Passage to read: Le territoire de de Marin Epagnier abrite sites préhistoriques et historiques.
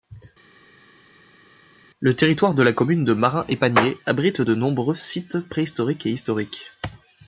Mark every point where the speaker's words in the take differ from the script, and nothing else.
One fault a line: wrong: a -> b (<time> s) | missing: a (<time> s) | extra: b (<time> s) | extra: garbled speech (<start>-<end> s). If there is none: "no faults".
extra: la commune (2.6 s)
extra: de nombreux (4.4 s)